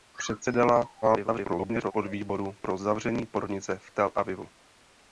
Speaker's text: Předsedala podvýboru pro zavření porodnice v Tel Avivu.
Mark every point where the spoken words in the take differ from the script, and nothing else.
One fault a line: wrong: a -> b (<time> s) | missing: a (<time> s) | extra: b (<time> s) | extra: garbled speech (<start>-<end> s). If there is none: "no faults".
extra: garbled speech (1.0-1.9 s)